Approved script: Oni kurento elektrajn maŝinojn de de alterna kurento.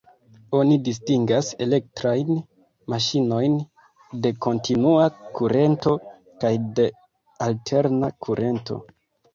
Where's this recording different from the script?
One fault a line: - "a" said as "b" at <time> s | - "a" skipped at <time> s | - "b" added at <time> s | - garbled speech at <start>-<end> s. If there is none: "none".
- "kurento" said as "distingas" at 0.8 s
- "kontinua kurento kaj" added at 4.5 s